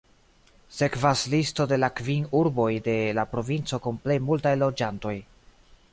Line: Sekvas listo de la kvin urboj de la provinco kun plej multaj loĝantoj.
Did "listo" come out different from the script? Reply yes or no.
no